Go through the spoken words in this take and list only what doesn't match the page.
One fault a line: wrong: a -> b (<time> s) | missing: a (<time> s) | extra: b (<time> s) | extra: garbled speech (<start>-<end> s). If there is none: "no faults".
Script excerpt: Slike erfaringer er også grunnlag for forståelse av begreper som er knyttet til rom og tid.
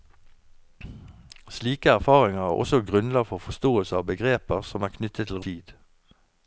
missing: rom og (5.4 s)